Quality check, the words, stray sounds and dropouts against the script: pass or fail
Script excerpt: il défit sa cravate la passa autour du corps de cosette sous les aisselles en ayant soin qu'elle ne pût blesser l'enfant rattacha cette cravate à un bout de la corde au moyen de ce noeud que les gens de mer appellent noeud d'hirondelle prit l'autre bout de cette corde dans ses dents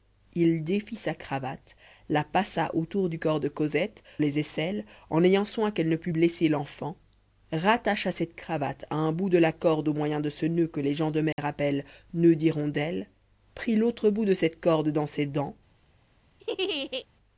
fail